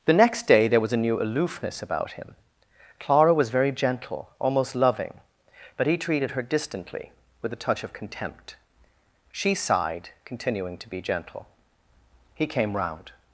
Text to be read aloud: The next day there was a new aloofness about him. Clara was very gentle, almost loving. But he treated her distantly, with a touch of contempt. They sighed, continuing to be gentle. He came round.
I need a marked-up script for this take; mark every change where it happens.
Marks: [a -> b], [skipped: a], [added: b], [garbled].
The next day there was a new aloofness about him. Clara was very gentle, almost loving. But he treated her distantly, with a touch of contempt. [They -> She] sighed, continuing to be gentle. He came round.